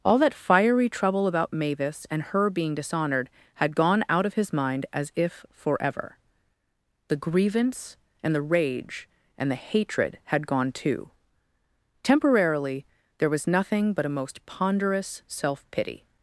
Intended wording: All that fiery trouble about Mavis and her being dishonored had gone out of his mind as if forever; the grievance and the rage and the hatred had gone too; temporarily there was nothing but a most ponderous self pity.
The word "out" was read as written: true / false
true